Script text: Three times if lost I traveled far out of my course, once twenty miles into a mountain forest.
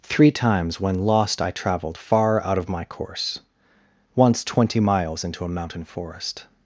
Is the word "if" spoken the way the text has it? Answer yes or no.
no